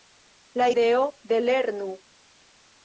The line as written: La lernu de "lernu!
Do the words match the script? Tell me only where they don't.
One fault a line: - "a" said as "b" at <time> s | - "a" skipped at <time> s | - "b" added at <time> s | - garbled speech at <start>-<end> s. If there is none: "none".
- "lernu" said as "ideo" at 0.7 s